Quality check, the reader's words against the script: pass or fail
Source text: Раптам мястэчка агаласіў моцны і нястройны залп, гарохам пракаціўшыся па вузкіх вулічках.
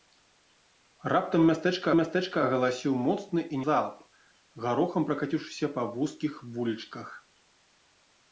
fail